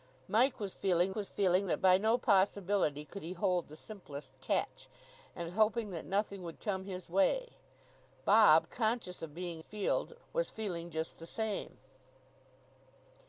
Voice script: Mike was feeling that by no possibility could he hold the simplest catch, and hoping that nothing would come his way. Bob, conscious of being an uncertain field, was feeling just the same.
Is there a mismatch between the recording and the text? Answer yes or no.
yes